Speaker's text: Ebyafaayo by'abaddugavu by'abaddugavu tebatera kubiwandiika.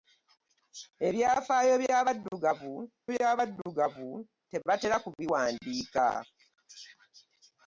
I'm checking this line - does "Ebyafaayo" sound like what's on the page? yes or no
yes